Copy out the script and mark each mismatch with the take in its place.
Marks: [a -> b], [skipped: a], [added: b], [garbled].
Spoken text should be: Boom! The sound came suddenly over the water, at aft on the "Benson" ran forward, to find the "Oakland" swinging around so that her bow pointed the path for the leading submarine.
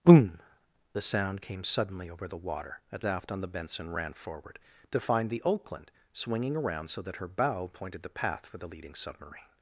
Boom! The sound came suddenly over the water, at aft on the "Benson" ran forward, to find the "Oakland" swinging around so that her bow pointed the path for the leading submarine.